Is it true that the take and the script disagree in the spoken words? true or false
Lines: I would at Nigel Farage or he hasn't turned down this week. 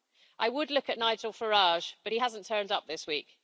true